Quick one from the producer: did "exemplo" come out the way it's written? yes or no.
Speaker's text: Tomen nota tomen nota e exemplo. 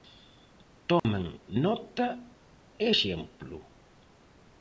yes